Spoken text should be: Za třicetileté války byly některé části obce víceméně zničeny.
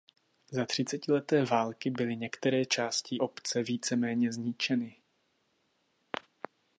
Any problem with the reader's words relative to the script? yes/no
no